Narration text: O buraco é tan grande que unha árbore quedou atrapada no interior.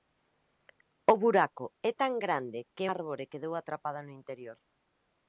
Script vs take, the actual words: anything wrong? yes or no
yes